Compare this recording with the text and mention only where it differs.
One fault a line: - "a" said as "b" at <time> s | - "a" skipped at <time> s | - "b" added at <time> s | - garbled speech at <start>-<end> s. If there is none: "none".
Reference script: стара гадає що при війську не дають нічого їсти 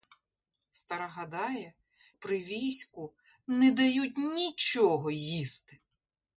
- "що" skipped at 1.7 s